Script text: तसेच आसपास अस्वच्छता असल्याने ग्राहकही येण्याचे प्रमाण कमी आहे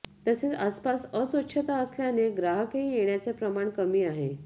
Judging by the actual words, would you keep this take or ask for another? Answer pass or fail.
pass